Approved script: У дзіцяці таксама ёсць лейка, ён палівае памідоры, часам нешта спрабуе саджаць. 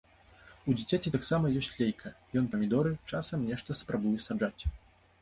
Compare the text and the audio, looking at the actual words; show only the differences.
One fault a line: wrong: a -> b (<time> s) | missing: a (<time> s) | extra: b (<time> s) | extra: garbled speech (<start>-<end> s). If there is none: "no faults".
missing: палівае (2.5 s)